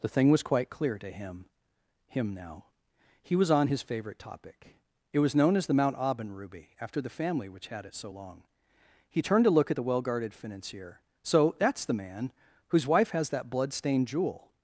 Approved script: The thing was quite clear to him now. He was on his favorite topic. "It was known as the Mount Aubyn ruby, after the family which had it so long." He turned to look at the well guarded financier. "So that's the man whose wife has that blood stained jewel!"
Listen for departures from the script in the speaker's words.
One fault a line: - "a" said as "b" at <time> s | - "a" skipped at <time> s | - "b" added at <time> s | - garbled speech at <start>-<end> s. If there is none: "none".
- "him" added at 2.1 s